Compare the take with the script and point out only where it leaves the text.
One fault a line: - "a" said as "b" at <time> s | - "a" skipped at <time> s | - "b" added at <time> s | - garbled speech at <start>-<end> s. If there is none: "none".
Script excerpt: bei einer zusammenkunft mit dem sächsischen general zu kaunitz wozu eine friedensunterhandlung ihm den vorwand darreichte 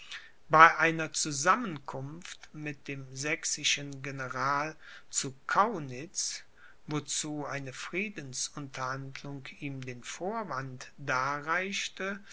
none